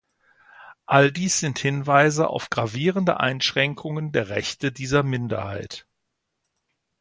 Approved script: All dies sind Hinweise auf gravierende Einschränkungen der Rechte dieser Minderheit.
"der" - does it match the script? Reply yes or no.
yes